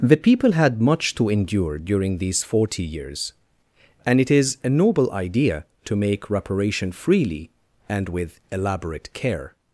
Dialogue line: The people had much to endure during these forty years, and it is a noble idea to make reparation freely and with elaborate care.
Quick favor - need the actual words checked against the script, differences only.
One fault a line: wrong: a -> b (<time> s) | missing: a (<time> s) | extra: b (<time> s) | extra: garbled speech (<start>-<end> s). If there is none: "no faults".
no faults